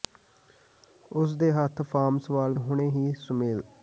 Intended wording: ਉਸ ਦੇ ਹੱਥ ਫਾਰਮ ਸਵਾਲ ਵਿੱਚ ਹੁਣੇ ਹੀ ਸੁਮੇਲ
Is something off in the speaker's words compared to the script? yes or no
yes